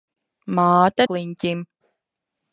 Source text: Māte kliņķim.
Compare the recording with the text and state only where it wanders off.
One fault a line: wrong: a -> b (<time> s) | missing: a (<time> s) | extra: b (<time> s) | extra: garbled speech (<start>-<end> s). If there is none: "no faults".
no faults